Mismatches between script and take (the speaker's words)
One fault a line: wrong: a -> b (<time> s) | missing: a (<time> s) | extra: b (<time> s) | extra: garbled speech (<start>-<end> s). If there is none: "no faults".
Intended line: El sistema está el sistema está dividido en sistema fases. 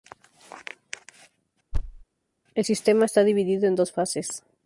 missing: el sistema está (3.2 s)
wrong: sistema -> dos (3.8 s)